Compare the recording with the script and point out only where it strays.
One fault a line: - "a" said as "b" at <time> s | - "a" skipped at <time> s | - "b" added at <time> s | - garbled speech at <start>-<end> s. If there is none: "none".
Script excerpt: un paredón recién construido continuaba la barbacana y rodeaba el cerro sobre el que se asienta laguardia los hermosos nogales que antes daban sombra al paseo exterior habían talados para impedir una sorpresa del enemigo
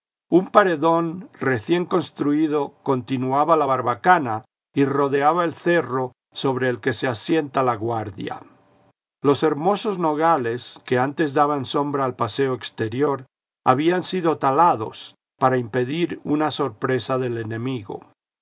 - "sido" added at 14.0 s